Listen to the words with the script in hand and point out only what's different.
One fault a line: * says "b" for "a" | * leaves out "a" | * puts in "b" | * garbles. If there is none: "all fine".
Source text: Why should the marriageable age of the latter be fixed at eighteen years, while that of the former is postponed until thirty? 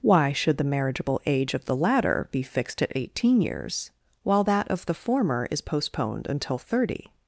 all fine